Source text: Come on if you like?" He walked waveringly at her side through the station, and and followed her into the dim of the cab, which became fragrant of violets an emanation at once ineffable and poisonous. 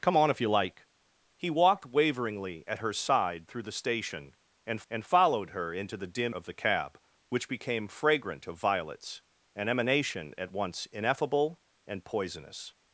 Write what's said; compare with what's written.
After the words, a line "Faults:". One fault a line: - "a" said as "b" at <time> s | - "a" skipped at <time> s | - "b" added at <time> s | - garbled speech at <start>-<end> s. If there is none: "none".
Come on if you like?" He walked waveringly at her side through the station, and and followed her into the dim of the cab, which became fragrant of violets an emanation at once ineffable and poisonous.
Faults:
none